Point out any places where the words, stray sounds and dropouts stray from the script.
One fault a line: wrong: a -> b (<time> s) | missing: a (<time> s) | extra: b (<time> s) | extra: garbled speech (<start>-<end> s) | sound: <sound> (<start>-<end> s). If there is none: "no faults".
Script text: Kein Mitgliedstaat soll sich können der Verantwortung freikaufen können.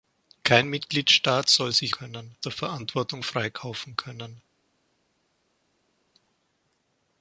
no faults